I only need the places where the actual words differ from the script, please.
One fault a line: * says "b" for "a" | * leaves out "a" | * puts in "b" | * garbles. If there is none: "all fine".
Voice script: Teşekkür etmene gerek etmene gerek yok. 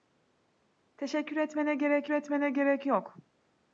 all fine